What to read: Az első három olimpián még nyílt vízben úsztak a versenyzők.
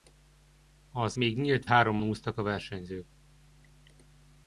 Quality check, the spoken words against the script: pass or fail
fail